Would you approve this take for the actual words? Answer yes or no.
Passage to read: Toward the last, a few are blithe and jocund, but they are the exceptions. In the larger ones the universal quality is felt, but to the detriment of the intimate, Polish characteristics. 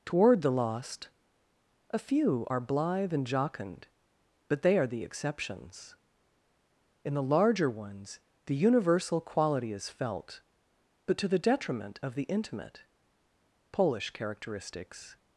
no